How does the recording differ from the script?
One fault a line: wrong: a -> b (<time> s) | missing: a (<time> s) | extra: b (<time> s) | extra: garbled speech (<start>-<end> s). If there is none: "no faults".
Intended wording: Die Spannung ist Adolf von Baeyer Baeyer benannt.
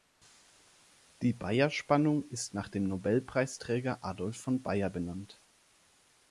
extra: Baeyer (1.3 s)
extra: nach dem Nobelpreisträger (2.5 s)
missing: Baeyer (4.9 s)